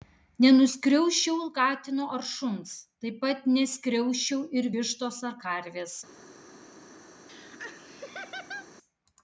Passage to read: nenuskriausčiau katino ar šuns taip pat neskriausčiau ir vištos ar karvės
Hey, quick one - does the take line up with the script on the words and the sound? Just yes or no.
no